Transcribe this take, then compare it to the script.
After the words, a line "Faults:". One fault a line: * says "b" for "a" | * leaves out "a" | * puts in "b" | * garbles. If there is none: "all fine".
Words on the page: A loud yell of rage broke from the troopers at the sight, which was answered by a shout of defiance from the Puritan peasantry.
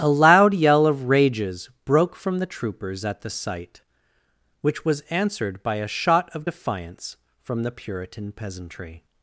A loud yell of rages broke from the troopers at the sight, which was answered by a shot of defiance from the Puritan peasantry.
Faults:
* says "rages" for "rage"
* says "shot" for "shout"